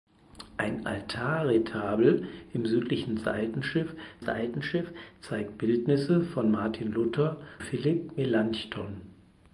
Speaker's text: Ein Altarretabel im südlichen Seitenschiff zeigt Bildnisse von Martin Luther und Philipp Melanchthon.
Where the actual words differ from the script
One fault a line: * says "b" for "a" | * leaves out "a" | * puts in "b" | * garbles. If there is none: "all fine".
* puts in "Seitenschiff"
* leaves out "und"